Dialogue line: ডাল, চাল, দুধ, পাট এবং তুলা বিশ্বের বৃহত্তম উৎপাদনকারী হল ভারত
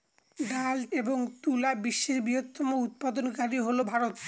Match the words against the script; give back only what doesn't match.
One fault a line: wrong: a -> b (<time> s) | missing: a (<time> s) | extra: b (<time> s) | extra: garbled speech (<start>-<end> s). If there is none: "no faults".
missing: চাল দুধ পাট (0.8 s)